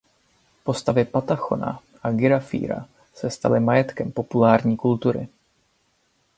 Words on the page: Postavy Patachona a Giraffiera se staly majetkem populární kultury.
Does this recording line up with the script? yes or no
yes